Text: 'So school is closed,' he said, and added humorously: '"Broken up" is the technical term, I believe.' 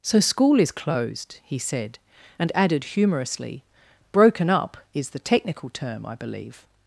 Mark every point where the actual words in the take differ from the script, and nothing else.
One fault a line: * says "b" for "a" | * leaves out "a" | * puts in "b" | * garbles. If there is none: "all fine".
all fine